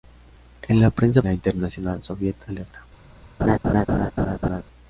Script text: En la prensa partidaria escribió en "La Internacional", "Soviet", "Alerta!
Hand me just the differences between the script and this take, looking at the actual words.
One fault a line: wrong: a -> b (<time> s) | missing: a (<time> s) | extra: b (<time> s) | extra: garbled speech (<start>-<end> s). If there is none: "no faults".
missing: partidaria escribió en (1.2 s)